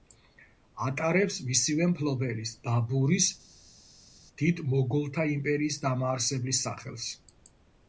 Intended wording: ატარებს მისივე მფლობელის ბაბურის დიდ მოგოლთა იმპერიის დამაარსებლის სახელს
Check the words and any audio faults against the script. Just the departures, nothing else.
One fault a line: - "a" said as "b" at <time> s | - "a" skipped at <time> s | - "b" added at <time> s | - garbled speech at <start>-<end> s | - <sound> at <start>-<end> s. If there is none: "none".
none